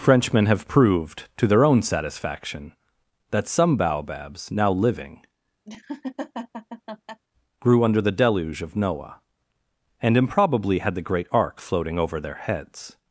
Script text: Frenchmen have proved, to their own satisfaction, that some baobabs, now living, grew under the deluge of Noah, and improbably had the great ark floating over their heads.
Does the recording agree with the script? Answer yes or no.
yes